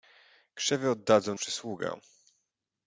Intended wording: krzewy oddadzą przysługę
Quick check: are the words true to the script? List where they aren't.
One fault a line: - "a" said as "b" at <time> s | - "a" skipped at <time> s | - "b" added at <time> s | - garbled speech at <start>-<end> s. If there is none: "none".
none